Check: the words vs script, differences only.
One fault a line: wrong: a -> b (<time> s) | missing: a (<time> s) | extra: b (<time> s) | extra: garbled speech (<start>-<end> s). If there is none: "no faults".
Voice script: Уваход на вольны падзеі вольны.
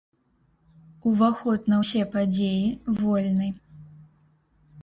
wrong: вольны -> ўсе (1.8 s)